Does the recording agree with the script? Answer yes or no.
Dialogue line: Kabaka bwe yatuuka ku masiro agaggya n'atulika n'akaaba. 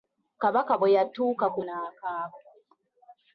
no